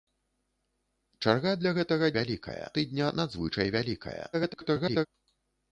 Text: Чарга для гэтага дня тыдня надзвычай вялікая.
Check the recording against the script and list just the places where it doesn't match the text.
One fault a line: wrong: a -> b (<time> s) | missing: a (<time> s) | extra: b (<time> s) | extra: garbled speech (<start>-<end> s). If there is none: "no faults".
wrong: дня -> вялікая (2.2 s)
extra: garbled speech (4.3-5.1 s)